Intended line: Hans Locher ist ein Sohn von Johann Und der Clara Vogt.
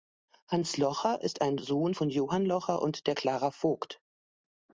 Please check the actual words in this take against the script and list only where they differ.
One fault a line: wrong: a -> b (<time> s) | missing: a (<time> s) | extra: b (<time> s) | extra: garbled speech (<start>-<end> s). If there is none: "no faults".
extra: Locher (2.4 s)